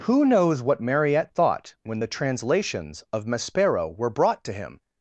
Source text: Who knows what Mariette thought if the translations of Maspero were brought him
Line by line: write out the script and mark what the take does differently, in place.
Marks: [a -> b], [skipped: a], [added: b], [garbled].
Who knows what Mariette thought [if -> when] the translations of Maspero were brought [added: to] him